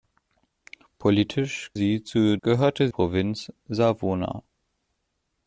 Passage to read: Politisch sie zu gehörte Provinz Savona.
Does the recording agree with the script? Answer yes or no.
yes